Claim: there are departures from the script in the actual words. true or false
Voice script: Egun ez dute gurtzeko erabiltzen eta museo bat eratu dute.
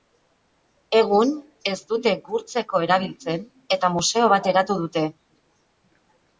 false